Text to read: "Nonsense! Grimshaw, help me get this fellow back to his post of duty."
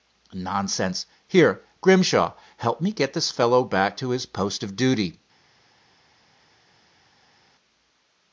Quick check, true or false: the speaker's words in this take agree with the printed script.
false